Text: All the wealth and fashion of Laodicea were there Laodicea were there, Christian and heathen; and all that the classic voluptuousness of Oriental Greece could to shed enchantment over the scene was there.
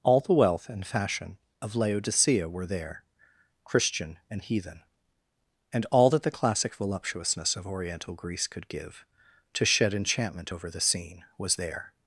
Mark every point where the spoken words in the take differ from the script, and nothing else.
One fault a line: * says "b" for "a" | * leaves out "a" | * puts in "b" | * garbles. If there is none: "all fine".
* leaves out "Laodicea were there"
* puts in "give"